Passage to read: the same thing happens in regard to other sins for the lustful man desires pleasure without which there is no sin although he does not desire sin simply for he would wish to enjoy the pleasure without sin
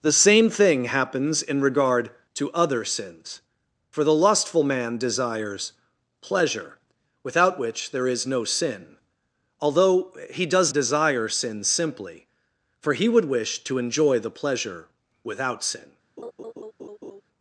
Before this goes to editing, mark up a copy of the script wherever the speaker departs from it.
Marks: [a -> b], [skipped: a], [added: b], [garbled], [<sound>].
the same thing happens in regard to other sins for the lustful man desires pleasure without which there is no sin although he does [skipped: not] desire sin simply for he would wish to enjoy the pleasure without sin [laugh]